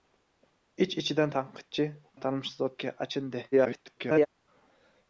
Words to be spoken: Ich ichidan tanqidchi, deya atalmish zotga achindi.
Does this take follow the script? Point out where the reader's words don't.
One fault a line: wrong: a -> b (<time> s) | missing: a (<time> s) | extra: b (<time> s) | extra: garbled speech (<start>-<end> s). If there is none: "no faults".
missing: deya (1.9 s)
extra: garbled speech (3.5-4.3 s)